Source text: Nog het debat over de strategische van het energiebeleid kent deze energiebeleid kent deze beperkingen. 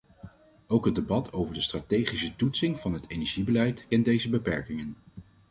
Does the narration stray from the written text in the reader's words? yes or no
yes